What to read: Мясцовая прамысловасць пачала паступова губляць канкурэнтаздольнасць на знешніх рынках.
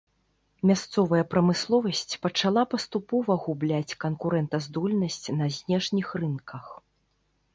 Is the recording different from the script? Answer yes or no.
no